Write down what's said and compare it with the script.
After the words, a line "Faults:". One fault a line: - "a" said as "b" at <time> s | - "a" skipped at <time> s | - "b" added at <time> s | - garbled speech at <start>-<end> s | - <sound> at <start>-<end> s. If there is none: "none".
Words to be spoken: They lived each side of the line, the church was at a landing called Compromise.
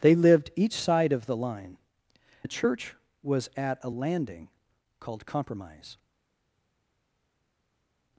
They lived each side of the line, the church was at a landing called Compromise.
Faults:
none